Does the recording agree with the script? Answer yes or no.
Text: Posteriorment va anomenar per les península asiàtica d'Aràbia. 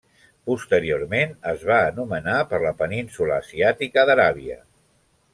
no